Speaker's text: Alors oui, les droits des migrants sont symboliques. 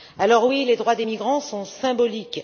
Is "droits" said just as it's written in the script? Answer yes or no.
yes